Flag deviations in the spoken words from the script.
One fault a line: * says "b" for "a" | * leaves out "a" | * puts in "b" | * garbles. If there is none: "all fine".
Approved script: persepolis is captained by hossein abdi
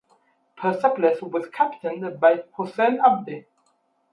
* says "was" for "is"